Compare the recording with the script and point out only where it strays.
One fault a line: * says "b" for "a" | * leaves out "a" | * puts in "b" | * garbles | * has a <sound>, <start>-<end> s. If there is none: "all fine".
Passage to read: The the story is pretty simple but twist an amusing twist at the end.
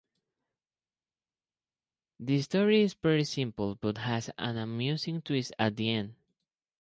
* leaves out "the"
* says "has" for "twist"